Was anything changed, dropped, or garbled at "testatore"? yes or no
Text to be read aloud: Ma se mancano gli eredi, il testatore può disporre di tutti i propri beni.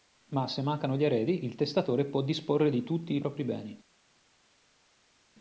no